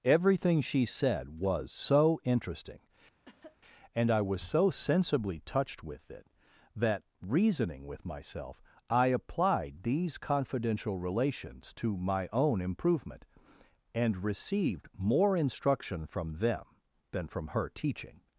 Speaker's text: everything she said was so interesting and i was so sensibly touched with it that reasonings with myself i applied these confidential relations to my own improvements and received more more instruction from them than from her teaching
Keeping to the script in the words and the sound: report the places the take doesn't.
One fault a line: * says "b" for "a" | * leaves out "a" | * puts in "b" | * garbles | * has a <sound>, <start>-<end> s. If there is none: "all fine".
* has a cough, 3.2-3.6 s
* says "reasoning" for "reasonings"
* says "improvement" for "improvements"
* leaves out "more"